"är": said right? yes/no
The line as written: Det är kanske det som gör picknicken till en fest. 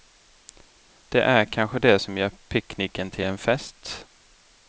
yes